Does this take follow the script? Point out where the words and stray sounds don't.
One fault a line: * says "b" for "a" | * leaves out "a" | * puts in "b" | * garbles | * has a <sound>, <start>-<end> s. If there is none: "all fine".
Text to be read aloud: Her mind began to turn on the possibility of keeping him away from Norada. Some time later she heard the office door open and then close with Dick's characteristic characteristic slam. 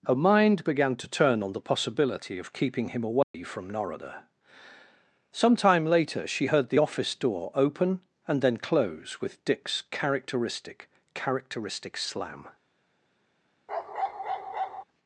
* has a dropout, 3.2-3.3 s
* has a bark, 13.7-14.8 s